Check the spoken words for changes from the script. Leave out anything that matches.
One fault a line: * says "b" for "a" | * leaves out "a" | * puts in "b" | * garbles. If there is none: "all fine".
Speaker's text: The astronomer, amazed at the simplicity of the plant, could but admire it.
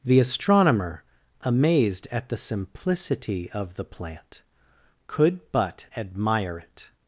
all fine